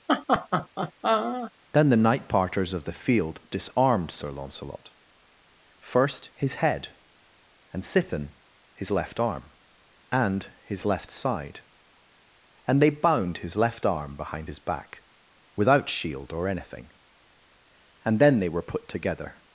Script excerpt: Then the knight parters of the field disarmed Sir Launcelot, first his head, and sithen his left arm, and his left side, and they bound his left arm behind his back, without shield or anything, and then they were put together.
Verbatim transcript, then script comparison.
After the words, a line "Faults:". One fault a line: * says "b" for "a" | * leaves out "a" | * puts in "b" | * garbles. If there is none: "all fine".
Then the knight parters of the field disarmed Sir Launcelot, first his head, and sithen his left arm, and his left side, and they bound his left arm behind his back, without shield or anything, and then they were put together.
Faults:
all fine